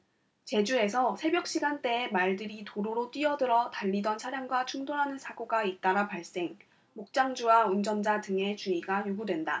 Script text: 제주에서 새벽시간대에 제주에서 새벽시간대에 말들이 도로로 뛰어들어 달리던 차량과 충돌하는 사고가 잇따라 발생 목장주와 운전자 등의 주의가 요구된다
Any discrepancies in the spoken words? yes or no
yes